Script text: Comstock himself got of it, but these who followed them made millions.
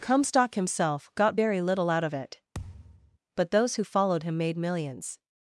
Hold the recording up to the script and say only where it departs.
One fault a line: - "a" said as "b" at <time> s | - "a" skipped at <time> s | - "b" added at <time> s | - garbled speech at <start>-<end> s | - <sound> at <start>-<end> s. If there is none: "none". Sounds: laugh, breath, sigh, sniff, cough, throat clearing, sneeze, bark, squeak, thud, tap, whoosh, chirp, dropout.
- "very little out" added at 1.3 s
- thud at 2.5-3.2 s
- "these" said as "those" at 3.5 s
- "them" said as "him" at 4.2 s